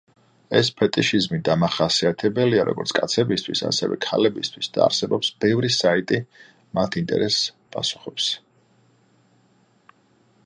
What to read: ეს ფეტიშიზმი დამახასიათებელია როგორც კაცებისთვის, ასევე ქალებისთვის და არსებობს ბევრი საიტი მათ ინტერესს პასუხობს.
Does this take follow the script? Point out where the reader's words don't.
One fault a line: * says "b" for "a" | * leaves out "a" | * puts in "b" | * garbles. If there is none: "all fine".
all fine